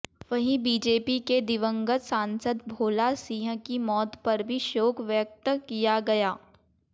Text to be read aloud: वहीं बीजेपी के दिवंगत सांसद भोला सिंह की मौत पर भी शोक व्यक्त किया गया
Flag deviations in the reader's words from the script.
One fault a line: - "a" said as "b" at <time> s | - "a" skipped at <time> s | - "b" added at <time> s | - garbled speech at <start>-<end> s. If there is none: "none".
none